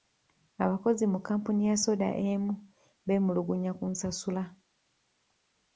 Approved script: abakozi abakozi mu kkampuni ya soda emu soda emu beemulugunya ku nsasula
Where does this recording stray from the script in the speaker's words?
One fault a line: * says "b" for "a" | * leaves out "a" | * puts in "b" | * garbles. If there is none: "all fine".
* leaves out "abakozi"
* leaves out "soda emu"